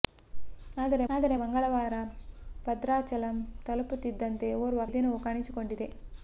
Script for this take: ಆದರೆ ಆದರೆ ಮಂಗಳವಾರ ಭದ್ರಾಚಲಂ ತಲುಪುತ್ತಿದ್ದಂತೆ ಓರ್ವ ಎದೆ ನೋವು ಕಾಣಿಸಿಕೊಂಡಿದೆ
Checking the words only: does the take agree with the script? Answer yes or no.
yes